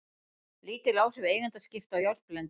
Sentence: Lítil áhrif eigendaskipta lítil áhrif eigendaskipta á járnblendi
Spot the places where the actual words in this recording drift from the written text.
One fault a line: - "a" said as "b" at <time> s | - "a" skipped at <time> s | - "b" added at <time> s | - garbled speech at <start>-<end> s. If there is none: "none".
- "lítil áhrif eigendaskipta" skipped at 1.9 s